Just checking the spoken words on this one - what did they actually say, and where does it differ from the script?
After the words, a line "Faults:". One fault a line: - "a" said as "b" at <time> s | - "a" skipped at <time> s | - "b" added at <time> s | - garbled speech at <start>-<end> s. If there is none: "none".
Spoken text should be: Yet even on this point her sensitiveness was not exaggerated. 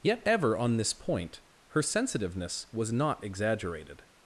Yet ever on this point her sensitiveness was not exaggerated.
Faults:
- "even" said as "ever" at 0.2 s